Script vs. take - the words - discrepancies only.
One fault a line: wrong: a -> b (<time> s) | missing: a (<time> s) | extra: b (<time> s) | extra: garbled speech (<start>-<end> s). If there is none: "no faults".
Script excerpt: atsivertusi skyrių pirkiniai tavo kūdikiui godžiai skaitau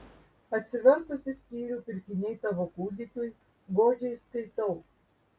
no faults